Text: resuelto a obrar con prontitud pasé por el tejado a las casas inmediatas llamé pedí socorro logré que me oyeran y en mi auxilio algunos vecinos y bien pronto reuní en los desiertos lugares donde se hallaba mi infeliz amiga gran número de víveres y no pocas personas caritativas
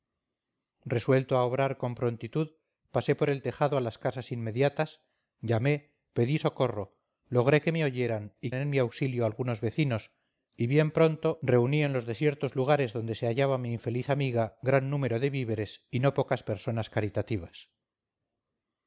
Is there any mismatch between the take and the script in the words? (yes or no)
no